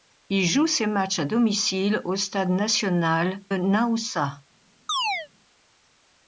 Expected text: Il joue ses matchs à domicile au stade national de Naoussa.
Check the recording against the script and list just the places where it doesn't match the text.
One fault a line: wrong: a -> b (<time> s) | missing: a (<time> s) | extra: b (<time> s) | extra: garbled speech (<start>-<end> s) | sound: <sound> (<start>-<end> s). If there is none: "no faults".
missing: de (3.4 s)
sound: chirp (4.9-5.3 s)